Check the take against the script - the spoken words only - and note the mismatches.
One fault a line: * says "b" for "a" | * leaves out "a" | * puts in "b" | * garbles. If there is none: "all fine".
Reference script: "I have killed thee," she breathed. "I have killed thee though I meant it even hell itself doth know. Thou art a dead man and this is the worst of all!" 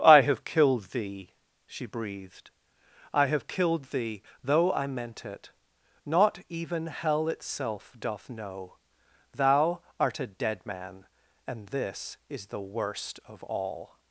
* puts in "not"